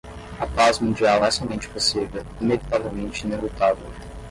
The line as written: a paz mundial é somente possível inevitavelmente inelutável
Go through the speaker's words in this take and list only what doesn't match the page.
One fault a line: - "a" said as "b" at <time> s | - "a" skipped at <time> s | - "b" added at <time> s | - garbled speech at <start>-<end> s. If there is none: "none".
none